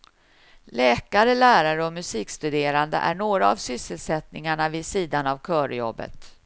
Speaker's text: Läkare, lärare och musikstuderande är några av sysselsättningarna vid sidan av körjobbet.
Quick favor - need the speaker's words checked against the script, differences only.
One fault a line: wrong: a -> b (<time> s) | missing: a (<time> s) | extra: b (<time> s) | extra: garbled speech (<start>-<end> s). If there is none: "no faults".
no faults